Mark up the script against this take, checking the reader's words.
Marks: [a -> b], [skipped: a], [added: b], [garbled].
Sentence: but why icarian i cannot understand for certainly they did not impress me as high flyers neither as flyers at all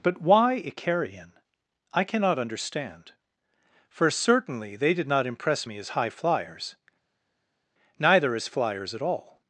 but why icarian i cannot understand for certainly they did not impress me as high flyers neither as flyers at all